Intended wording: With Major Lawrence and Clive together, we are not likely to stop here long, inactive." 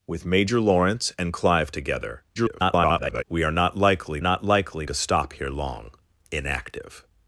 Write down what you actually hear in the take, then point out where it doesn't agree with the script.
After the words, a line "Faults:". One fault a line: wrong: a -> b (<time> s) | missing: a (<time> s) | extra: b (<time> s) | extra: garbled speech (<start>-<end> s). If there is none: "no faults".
With Major Lawrence and Clive together, [garbled] we are not likely not likely to stop here long, inactive."
Faults:
extra: garbled speech (2.3-3.2 s)
extra: not likely (4.2 s)